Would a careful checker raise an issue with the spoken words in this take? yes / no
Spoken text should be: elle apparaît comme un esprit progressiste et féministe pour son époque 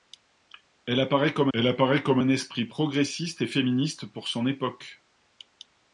yes